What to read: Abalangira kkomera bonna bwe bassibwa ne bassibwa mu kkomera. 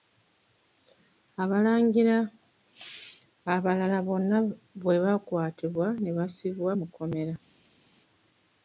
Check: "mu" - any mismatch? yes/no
no